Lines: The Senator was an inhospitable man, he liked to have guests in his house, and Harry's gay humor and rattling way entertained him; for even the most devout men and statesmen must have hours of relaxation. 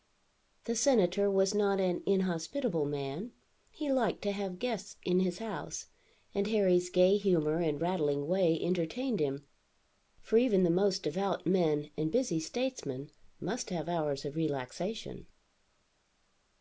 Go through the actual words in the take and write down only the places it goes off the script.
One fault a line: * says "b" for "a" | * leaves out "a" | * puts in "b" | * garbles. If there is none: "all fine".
* puts in "not"
* puts in "busy"